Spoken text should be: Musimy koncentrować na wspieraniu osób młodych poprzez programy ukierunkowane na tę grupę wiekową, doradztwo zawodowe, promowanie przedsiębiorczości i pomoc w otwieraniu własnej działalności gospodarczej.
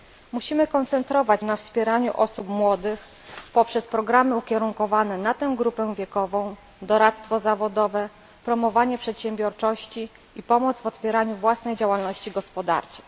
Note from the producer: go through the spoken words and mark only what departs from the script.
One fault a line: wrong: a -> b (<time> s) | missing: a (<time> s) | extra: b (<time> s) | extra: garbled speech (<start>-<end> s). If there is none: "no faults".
no faults